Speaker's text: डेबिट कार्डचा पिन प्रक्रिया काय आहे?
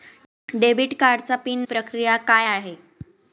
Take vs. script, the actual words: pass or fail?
pass